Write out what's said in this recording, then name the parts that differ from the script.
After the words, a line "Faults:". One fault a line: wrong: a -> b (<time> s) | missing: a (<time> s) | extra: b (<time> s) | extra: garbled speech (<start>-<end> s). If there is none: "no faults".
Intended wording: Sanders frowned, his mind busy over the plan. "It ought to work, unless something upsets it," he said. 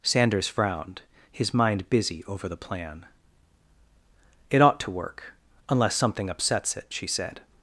Sanders frowned, his mind busy over the plan. "It ought to work, unless something upsets it," she said.
Faults:
wrong: he -> she (6.9 s)